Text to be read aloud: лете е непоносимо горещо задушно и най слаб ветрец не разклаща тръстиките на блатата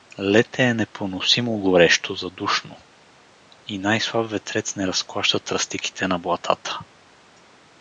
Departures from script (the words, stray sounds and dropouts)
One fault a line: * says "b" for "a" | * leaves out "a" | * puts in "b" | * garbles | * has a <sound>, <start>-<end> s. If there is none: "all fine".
all fine